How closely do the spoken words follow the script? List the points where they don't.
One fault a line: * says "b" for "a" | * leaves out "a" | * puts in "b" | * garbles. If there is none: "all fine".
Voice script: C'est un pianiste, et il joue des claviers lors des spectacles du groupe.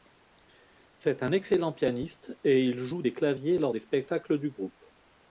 * puts in "excellent"